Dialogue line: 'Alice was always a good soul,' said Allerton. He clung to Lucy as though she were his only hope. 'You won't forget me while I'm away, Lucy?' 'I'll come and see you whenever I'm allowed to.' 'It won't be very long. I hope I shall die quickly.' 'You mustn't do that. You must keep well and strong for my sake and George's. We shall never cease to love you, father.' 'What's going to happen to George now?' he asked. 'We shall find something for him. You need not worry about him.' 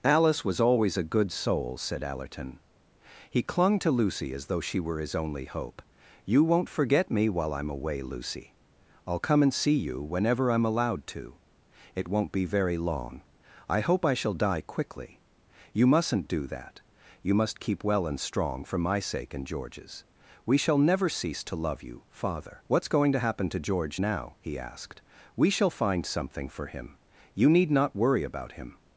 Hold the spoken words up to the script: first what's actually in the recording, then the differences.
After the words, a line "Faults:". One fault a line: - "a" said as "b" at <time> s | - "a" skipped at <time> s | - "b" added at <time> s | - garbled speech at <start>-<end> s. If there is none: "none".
'Alice was always a good soul,' said Allerton. He clung to Lucy as though she were his only hope. 'You won't forget me while I'm away, Lucy?' 'I'll come and see you whenever I'm allowed to.' 'It won't be very long. I hope I shall die quickly.' 'You mustn't do that. You must keep well and strong for my sake and George's. We shall never cease to love you, father.' 'What's going to happen to George now?' he asked. 'We shall find something for him. You need not worry about him.'
Faults:
none